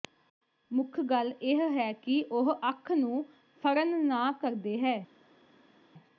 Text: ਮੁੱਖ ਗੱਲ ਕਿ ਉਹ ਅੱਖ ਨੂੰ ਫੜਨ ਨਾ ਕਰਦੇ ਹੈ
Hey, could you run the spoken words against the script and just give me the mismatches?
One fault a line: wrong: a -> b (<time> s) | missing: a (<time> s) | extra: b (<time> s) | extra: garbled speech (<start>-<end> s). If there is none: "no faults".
extra: ਇਹ ਹੈ (1.4 s)